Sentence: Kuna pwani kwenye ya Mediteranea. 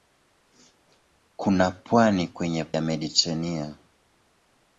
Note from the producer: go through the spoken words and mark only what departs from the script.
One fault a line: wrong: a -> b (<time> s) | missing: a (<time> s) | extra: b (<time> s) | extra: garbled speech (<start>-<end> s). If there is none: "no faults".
no faults